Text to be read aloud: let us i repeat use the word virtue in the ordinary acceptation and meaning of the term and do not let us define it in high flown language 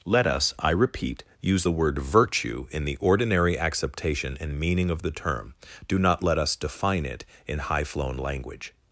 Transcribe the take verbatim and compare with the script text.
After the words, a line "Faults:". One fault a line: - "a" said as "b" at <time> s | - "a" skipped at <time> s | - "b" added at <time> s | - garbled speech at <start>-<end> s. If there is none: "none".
let us i repeat use the word virtue in the ordinary acceptation and meaning of the term do not let us define it in high flown language
Faults:
- "and" skipped at 5.5 s